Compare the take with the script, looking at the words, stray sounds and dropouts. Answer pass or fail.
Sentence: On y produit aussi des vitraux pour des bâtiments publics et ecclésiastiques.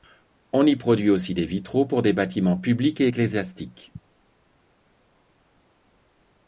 pass